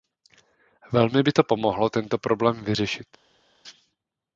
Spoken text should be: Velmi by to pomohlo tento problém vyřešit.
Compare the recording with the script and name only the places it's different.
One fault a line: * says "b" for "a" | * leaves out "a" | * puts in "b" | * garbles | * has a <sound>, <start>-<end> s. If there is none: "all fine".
all fine